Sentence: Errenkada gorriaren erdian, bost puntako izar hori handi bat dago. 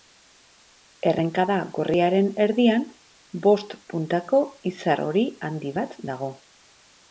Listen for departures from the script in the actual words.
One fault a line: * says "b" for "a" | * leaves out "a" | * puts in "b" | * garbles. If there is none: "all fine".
all fine